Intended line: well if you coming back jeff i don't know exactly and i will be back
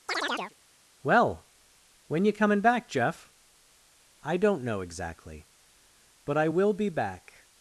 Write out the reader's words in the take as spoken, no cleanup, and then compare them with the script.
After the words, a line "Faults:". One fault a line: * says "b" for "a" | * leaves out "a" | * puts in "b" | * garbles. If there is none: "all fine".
well when you coming back jeff i don't know exactly but i will be back
Faults:
* says "when" for "if"
* says "but" for "and"